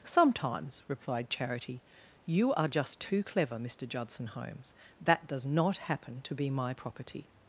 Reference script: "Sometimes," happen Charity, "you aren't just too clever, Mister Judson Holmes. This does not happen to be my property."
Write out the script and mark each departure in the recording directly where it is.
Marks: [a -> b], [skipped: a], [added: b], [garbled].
"Sometimes," [happen -> replied] Charity, "you [aren't -> are] just too clever, Mister Judson Holmes. [This -> That] does not happen to be my property."